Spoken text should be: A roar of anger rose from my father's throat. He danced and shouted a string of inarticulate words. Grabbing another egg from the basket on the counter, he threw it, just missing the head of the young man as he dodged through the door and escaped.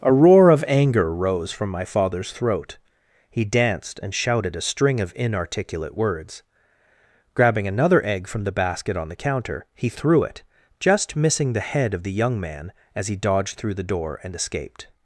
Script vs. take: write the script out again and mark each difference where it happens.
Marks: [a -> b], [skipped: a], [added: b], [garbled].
A roar of anger rose from my father's throat. He danced and shouted a string of inarticulate words. Grabbing another egg from the basket on the counter, he threw it, just missing the head of the young man as he dodged through the door and escaped.